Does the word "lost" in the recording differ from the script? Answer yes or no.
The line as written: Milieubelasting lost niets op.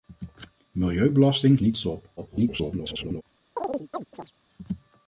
yes